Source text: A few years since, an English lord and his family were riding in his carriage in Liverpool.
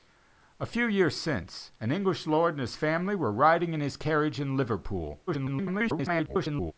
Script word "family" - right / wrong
right